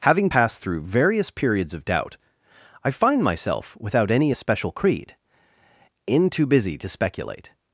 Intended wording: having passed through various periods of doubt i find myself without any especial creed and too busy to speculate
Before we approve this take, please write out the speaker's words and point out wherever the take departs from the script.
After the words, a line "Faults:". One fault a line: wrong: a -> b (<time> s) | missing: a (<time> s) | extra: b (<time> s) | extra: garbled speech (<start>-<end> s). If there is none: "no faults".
having passed through various periods of doubt i find myself without any especial creed in too busy to speculate
Faults:
wrong: and -> in (6.1 s)